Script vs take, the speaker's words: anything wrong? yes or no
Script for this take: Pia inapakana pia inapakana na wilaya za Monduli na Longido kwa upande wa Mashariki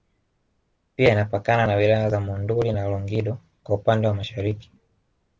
yes